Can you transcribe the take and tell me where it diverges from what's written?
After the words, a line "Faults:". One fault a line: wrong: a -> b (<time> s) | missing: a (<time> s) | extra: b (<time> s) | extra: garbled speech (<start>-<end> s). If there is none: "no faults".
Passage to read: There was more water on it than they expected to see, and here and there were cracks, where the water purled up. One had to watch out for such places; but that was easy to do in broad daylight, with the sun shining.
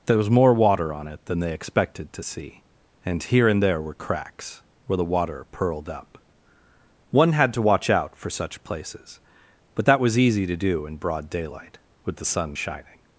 There was more water on it than they expected to see, and here and there were cracks, where the water purled up. One had to watch out for such places; but that was easy to do in broad daylight, with the sun shining.
Faults:
no faults